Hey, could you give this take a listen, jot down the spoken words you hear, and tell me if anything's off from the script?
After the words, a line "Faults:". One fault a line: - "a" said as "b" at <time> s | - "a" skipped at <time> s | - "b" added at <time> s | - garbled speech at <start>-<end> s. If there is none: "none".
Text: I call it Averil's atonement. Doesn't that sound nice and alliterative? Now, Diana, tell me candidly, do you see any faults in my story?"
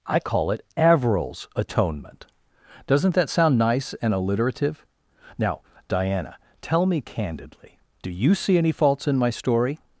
I call it Averil's atonement. Doesn't that sound nice and alliterative? Now, Diana, tell me candidly, do you see any faults in my story?"
Faults:
none